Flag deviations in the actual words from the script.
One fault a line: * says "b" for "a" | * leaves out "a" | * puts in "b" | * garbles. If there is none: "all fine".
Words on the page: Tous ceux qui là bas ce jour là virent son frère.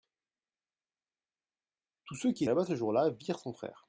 all fine